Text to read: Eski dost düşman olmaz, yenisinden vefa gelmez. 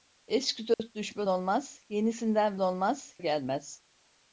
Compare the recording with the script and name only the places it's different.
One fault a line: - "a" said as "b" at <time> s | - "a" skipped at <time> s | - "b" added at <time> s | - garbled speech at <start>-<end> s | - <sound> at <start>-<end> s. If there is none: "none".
- dropout at 0.7-0.8 s
- "vefa" said as "olmaz" at 2.6 s